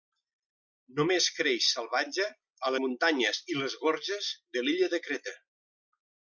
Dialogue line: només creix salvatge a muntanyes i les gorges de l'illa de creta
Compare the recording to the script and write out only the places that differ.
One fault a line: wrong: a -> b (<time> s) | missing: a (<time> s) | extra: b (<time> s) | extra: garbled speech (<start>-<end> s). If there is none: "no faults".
no faults